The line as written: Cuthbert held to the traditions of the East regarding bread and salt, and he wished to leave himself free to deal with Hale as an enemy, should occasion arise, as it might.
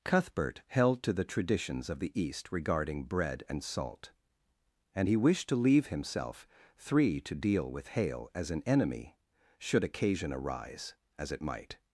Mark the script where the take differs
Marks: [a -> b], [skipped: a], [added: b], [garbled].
Cuthbert held to the traditions of the East regarding bread and salt, and he wished to leave himself [free -> three] to deal with Hale as an enemy, should occasion arise, as it might.